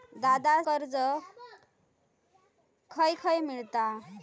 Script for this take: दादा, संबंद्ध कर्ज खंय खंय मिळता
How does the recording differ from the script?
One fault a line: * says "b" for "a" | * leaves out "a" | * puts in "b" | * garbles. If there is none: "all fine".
* leaves out "संबंद्ध"